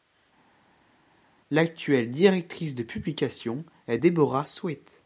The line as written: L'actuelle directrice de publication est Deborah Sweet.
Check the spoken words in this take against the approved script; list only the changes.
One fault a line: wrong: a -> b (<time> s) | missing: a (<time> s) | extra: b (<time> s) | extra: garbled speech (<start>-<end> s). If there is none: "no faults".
no faults